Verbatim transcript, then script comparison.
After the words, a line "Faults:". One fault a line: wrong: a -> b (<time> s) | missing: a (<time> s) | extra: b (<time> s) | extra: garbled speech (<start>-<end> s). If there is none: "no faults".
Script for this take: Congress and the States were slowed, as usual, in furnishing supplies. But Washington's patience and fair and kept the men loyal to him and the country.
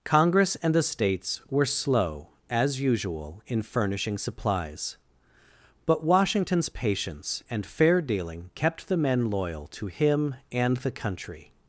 Congress and the States were slow, as usual, in furnishing supplies. But Washington's patience and fair dealing kept the men loyal to him and the country.
Faults:
wrong: slowed -> slow (1.6 s)
wrong: and -> dealing (8.0 s)